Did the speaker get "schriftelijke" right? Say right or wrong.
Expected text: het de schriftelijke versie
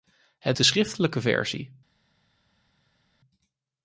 right